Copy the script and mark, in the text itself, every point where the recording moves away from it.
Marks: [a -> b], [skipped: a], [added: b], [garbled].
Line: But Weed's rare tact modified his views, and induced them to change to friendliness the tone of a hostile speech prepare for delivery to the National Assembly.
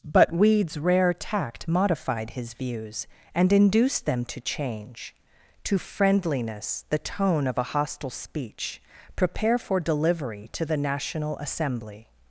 But Weed's rare tact modified his views, and induced them to change to friendliness the tone of a hostile speech prepare for delivery to the National Assembly.